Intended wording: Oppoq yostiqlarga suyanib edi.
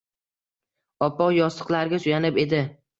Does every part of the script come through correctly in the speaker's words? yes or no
yes